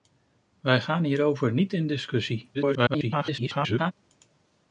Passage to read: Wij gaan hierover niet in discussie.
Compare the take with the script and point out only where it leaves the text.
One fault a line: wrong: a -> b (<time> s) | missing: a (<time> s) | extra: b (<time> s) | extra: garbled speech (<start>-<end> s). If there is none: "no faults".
extra: garbled speech (2.5-3.9 s)